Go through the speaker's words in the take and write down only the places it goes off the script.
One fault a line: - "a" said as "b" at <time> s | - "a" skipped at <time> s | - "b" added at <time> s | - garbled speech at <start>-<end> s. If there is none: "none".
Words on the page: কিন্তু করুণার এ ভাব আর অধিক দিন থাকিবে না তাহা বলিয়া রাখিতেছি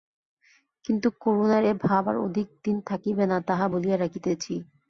none